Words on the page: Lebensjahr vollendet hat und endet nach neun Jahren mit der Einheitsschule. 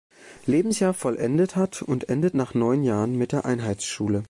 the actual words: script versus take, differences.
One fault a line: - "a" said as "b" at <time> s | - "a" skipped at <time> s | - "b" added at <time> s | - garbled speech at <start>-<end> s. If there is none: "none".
none